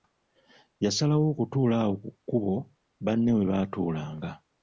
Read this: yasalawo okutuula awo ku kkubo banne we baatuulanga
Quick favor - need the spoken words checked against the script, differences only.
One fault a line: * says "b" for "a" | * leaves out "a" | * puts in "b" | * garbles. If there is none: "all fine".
all fine